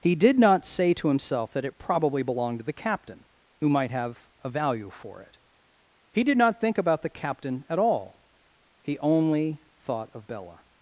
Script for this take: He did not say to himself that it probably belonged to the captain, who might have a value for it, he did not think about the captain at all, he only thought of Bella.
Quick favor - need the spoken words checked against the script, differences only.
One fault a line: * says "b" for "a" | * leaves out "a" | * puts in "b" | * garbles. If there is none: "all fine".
all fine